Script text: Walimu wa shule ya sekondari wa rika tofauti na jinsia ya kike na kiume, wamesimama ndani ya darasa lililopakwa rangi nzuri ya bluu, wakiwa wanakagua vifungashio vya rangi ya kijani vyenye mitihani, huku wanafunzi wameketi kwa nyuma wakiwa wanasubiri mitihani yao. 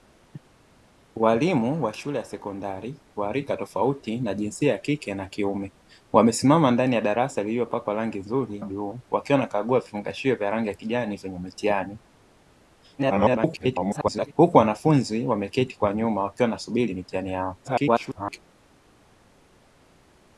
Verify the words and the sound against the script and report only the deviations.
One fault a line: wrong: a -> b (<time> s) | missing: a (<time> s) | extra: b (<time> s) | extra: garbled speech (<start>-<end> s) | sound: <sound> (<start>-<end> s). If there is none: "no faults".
missing: ya (8.6 s)
extra: garbled speech (13.0-14.3 s)
extra: garbled speech (17.6-18.4 s)